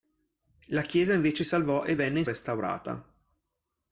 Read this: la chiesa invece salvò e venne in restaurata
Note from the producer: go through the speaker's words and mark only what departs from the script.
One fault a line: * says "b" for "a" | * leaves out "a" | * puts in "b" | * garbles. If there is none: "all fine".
all fine